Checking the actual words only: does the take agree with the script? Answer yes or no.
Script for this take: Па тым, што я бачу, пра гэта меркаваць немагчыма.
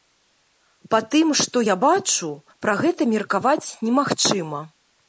yes